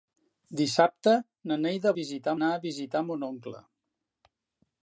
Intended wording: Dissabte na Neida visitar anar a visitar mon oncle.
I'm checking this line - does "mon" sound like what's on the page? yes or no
yes